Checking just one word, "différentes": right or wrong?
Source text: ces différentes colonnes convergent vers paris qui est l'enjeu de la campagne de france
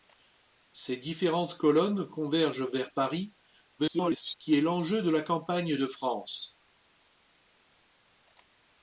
right